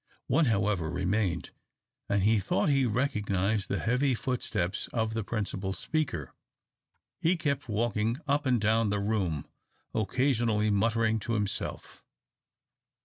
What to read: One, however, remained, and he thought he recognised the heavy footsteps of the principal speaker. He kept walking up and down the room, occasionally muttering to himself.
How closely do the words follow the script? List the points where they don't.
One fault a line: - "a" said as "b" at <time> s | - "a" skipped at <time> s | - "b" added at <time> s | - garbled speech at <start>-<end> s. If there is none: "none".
none